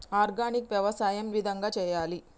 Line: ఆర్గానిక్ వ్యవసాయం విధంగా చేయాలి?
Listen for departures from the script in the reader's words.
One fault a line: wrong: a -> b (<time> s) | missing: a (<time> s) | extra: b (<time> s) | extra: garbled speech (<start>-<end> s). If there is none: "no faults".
no faults